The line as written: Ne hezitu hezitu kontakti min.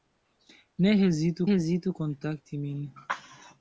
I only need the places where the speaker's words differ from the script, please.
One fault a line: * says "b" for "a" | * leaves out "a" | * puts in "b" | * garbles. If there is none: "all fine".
all fine